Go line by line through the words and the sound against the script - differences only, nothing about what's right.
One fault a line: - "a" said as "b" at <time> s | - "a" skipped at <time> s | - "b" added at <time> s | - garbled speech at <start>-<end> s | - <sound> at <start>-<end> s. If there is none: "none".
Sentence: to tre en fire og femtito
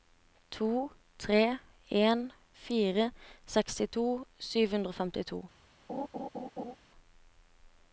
- "sekstito sju hundre" added at 3.5 s
- laugh at 5.9-6.8 s